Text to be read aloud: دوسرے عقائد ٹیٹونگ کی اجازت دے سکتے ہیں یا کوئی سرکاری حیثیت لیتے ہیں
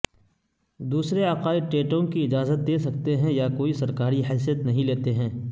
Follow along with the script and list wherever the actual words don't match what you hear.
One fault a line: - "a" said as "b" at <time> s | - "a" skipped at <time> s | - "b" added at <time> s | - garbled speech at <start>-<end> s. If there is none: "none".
- "نہیں" added at 4.7 s